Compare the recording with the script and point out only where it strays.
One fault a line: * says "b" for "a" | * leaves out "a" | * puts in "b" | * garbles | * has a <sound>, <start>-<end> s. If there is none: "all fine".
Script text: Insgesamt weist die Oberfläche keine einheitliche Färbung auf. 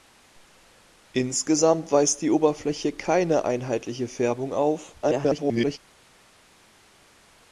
* garbles